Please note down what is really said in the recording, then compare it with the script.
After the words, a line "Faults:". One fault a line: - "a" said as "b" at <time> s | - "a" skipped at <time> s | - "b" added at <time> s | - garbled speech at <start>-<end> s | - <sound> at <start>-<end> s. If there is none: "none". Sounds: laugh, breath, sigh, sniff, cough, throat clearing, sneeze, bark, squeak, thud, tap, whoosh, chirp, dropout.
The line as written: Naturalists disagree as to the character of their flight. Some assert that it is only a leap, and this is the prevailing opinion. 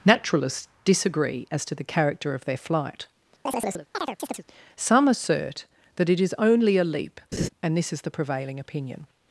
Naturalists disagree as to the character of their flight. Some assert that it is only a leap, and this is the prevailing opinion.
Faults:
- chirp at 3.5-4.4 s
- laugh at 7.3-7.5 s